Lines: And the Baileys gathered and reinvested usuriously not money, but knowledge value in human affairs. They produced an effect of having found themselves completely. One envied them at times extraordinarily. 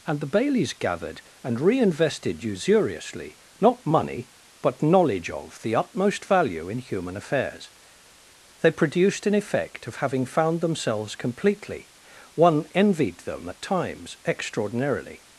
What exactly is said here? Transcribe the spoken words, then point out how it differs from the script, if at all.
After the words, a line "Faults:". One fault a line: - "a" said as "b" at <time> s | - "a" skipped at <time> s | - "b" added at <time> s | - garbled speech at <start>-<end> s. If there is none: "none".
And the Baileys gathered and reinvested usuriously not money, but knowledge of the utmost value in human affairs. They produced an effect of having found themselves completely. One envied them at times extraordinarily.
Faults:
- "of the utmost" added at 5.3 s